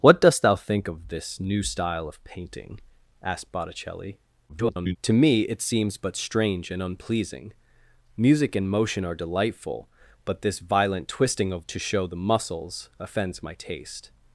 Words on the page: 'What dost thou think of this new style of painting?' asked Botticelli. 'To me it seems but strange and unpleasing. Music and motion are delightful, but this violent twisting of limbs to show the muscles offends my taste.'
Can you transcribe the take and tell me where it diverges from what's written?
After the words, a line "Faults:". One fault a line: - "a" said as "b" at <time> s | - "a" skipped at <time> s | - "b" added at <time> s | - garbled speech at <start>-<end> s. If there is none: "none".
'What dost thou think of this new style of painting?' asked Botticelli. [garbled] 'To me it seems but strange and unpleasing. Music and motion are delightful, but this violent twisting of to show the muscles offends my taste.'
Faults:
- garbled speech at 4.5-5.0 s
- "limbs" skipped at 11.7 s